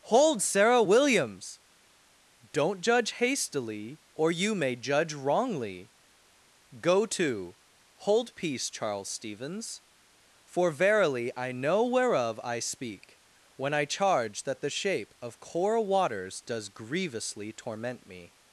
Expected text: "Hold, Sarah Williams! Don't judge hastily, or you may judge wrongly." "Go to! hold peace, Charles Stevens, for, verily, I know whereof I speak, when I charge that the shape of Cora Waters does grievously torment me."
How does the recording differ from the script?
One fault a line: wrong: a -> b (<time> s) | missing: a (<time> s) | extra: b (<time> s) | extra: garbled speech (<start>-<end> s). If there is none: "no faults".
no faults